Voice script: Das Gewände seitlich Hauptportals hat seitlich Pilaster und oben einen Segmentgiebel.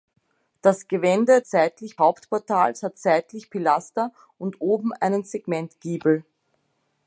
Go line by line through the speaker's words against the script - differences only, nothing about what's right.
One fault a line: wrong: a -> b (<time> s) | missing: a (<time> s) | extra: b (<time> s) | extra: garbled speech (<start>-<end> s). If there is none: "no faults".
no faults